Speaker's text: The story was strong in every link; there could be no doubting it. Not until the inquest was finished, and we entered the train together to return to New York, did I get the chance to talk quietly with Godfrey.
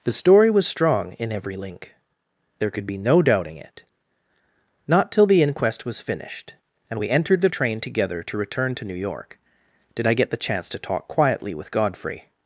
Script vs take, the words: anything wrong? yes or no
yes